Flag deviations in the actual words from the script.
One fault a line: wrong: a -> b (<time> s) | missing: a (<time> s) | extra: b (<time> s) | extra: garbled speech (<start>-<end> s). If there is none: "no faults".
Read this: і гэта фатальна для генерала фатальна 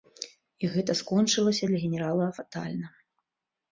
wrong: фатальна -> скончылася (1.0 s)